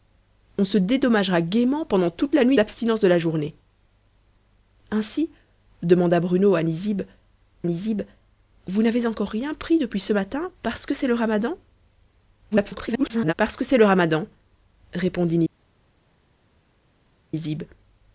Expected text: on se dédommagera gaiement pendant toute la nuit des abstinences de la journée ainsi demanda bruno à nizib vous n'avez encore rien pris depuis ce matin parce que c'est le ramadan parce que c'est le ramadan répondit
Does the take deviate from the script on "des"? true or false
true